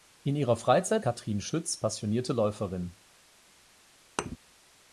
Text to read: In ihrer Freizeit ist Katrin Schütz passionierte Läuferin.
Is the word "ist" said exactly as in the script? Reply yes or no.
no